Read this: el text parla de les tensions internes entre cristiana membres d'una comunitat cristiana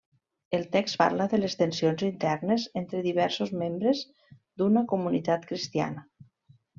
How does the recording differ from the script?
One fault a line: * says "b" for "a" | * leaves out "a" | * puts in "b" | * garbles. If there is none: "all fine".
* says "diversos" for "cristiana"